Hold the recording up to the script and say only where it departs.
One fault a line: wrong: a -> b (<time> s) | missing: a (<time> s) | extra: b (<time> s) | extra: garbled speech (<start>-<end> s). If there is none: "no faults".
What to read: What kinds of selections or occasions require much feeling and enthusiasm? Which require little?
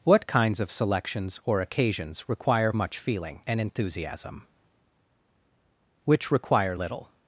no faults